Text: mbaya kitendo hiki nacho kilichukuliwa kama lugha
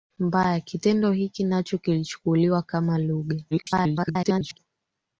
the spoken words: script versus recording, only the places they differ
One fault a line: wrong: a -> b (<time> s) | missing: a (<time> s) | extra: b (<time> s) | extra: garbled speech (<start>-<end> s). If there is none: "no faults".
extra: garbled speech (3.5-4.6 s)